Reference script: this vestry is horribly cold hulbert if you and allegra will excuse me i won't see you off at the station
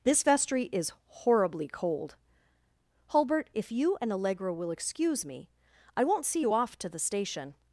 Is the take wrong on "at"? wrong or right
wrong